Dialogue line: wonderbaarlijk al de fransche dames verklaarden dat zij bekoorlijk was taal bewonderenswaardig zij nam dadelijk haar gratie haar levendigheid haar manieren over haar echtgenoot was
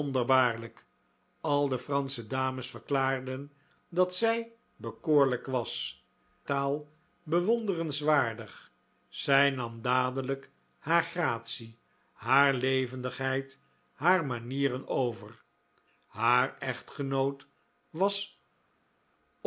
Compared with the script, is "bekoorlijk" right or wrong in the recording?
right